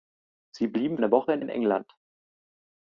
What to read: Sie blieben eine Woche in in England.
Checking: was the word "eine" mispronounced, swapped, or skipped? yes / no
no